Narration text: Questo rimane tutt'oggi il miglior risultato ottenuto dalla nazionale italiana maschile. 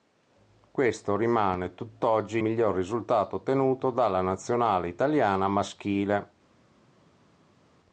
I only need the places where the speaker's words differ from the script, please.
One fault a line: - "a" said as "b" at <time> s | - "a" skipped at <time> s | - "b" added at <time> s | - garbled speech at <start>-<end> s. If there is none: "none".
- "il" skipped at 2.4 s